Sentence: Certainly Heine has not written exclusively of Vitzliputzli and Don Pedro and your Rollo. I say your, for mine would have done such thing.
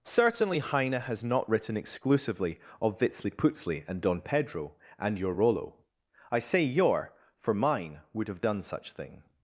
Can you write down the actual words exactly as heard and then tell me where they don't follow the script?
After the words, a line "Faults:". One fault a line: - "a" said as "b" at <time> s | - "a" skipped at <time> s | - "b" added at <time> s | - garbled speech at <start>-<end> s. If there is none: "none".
Certainly Heine has not written exclusively of Vitzliputzli and Don Pedro and your Rollo. I say your, for mine would have done such thing.
Faults:
none